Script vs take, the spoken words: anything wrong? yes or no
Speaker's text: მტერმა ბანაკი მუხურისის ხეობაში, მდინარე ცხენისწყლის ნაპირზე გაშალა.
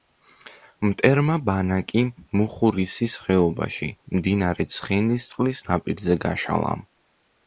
no